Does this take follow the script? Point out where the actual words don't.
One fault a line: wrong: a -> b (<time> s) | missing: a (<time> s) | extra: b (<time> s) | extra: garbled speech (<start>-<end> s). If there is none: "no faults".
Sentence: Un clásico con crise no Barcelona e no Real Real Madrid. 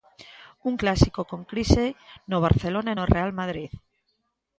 missing: Real (3.3 s)